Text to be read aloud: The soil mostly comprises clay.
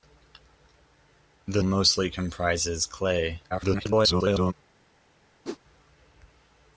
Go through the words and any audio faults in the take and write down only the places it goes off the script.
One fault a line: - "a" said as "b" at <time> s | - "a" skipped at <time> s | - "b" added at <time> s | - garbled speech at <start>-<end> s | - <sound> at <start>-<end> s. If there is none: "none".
- "soil" skipped at 1.6 s
- garbled speech at 3.5-4.5 s
- whoosh at 5.4-5.6 s